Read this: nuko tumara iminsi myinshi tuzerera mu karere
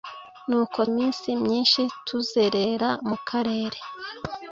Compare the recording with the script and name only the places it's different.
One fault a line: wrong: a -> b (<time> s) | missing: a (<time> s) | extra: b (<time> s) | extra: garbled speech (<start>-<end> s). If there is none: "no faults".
missing: tumara (0.8 s)